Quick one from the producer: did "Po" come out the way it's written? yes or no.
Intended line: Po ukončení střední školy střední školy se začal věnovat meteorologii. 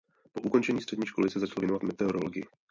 yes